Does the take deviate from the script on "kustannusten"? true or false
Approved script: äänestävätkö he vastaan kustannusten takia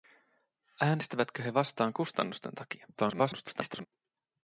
false